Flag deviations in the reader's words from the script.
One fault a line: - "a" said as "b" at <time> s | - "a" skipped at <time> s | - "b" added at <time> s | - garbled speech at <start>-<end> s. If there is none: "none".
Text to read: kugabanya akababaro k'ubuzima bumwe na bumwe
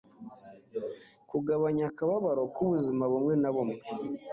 none